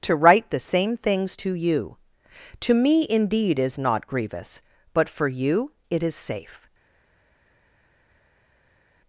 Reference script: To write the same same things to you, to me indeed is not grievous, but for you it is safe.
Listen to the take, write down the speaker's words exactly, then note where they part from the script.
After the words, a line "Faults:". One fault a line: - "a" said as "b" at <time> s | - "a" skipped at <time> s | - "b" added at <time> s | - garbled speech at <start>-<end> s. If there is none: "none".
To write the same things to you, to me indeed is not grievous, but for you it is safe.
Faults:
- "same" skipped at 1.0 s